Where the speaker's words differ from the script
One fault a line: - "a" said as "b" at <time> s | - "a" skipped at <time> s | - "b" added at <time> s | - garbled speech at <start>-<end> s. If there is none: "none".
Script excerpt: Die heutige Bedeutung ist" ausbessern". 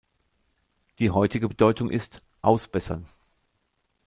none